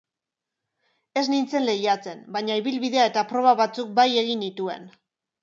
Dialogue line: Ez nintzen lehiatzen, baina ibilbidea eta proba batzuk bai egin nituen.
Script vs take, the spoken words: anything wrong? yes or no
no